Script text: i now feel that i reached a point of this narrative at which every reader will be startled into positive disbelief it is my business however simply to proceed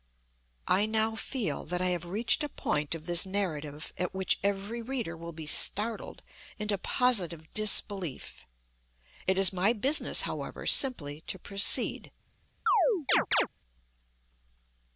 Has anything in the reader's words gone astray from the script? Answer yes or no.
yes